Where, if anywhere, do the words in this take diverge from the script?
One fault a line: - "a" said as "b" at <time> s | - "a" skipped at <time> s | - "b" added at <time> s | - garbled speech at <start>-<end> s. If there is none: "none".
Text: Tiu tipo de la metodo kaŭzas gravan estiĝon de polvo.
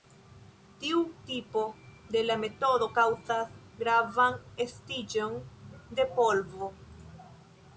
none